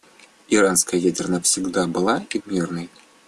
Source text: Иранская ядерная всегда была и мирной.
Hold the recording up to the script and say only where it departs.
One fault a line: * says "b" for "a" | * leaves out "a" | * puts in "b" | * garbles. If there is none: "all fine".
all fine